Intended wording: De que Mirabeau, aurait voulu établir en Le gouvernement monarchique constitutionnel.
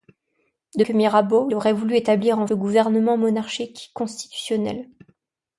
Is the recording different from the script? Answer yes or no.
no